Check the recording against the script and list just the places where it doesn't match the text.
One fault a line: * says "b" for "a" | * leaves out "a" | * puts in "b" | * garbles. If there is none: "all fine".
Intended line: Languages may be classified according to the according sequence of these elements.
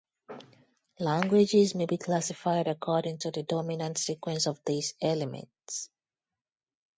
* says "dominant" for "according"